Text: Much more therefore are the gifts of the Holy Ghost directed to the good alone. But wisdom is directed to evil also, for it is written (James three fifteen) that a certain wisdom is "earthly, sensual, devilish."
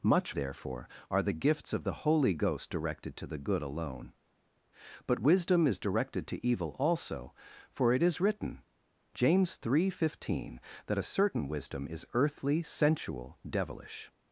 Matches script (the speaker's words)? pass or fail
fail